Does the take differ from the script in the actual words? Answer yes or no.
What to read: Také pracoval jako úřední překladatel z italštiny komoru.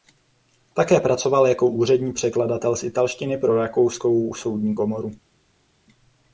yes